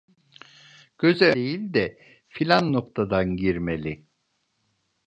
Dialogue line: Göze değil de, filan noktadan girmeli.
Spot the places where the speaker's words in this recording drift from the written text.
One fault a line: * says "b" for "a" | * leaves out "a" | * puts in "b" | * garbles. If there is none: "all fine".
all fine